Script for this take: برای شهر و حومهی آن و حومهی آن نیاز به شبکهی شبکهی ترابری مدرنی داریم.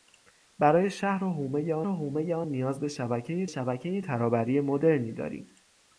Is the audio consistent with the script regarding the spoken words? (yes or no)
yes